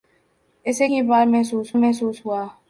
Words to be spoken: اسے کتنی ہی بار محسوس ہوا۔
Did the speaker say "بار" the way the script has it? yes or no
yes